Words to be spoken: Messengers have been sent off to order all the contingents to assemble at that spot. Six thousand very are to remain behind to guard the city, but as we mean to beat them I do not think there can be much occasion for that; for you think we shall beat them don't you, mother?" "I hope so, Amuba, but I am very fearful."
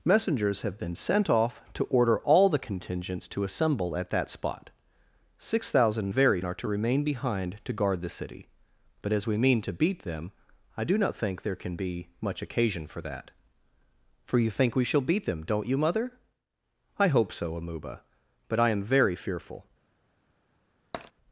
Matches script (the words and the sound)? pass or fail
fail